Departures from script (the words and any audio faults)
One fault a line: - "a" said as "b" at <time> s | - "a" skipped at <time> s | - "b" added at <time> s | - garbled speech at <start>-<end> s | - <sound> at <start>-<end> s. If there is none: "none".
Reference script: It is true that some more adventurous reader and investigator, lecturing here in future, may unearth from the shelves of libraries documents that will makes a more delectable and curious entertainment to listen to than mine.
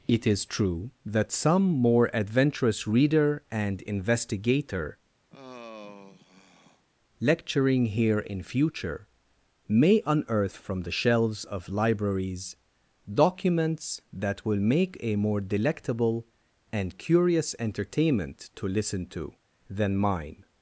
- sigh at 5.3-6.8 s
- "makes" said as "make" at 14.6 s